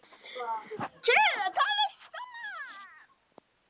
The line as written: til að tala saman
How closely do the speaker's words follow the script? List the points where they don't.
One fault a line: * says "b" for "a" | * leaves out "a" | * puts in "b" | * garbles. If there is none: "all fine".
all fine